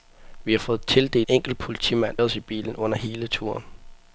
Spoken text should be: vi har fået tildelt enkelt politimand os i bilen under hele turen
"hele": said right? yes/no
yes